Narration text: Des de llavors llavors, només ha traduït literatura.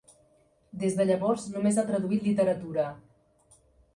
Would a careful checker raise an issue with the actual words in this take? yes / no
yes